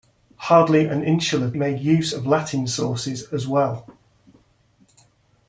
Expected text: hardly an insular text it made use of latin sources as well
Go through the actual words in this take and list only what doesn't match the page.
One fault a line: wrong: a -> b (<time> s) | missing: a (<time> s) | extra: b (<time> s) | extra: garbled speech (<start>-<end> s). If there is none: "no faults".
missing: text it (1.5 s)